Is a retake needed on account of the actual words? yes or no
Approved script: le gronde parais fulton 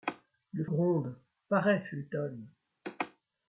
no